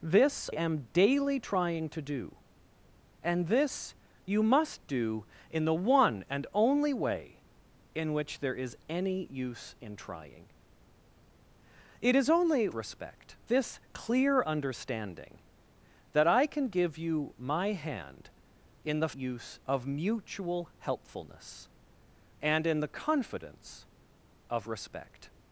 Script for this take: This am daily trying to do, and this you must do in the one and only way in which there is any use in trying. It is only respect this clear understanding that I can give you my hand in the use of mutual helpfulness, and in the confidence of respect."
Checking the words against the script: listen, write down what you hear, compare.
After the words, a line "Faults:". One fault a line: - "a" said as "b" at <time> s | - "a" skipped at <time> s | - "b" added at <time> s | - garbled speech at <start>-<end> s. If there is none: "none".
This am daily trying to do, and this you must do in the one and only way in which there is any use in trying. It is only respect this clear understanding that I can give you my hand in the use of mutual helpfulness, and in the confidence of respect."
Faults:
none